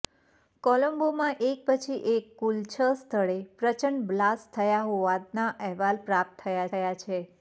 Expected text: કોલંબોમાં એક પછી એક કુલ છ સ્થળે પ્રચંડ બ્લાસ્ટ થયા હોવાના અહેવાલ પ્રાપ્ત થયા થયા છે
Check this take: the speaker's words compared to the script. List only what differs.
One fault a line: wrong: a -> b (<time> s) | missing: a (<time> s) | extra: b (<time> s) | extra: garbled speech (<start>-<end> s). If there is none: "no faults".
no faults